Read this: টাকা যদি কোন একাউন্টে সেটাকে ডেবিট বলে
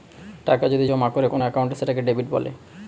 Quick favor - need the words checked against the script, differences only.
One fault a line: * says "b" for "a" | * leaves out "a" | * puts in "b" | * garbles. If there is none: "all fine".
* puts in "জমা করে"